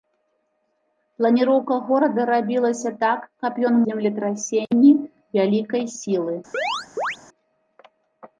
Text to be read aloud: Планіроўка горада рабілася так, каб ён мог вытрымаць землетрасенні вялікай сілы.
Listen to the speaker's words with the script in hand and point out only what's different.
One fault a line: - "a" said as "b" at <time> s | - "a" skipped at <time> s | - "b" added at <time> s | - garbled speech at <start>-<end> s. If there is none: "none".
- "мог вытрымаць" skipped at 3.8 s